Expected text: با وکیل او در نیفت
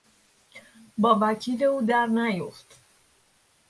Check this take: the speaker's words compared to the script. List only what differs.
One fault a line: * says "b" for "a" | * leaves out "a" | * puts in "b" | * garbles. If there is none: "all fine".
all fine